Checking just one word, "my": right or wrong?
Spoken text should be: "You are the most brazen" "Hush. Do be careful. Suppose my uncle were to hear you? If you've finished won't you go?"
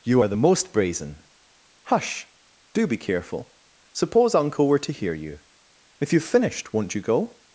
wrong